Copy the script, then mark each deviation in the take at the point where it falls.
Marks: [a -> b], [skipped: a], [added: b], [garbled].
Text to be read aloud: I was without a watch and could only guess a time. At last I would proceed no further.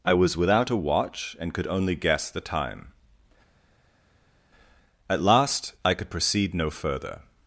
I was without a watch and could only guess [a -> the] time. At last I [would -> could] proceed no further.